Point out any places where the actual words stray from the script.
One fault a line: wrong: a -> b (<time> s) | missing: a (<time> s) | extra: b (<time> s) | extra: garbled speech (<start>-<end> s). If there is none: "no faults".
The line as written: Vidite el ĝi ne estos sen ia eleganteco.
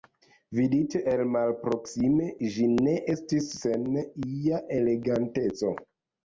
extra: malproksime (1.4 s)
wrong: estos -> estis (3.2 s)